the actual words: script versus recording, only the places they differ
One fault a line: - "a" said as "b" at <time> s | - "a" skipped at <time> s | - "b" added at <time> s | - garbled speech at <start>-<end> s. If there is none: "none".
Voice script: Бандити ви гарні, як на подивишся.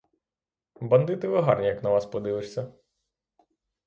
- "вас" added at 1.9 s